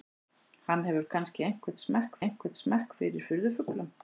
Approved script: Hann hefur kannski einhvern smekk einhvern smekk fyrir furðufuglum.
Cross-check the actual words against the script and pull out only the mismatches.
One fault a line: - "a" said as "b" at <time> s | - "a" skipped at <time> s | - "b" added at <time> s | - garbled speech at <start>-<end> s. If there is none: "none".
none